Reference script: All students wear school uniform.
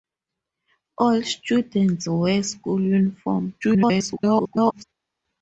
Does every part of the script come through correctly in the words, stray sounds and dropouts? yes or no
no